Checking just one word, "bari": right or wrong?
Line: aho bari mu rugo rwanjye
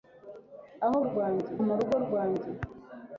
wrong